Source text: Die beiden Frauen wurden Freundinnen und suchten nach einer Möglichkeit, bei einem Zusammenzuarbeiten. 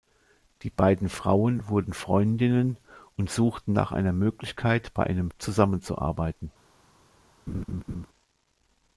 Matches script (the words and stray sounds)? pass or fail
fail